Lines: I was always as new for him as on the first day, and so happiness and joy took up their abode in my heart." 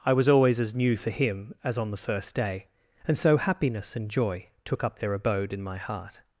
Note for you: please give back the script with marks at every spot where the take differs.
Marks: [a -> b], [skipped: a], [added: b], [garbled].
I was always as new for him as on the first day, and so happiness and joy took up their abode in my heart."